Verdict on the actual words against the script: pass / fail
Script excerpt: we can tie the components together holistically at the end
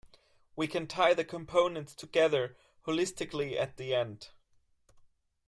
pass